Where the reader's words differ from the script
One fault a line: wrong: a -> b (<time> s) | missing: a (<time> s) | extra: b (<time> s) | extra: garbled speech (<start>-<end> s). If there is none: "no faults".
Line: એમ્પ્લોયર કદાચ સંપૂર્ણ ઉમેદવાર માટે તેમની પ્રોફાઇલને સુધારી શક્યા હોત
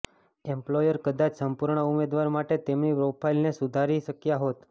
no faults